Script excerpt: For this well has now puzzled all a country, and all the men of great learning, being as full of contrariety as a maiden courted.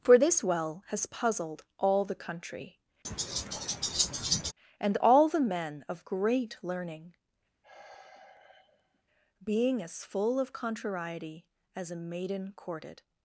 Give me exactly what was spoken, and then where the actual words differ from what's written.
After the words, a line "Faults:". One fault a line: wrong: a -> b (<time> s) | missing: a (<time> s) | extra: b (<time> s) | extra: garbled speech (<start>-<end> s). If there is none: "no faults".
For this well has puzzled all the country, and all the men of great learning, being as full of contrariety as a maiden courted.
Faults:
missing: now (1.0 s)
wrong: a -> the (2.0 s)